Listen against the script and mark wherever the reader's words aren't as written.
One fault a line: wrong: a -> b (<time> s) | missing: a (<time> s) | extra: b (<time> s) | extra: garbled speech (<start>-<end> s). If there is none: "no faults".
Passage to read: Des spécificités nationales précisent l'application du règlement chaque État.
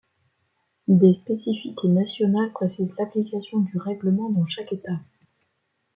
extra: dans (4.3 s)